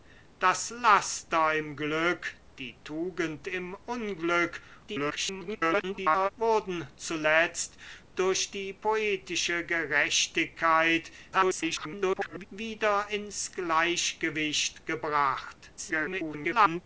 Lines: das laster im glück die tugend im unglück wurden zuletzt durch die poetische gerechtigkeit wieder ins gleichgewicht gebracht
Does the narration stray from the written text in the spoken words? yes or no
yes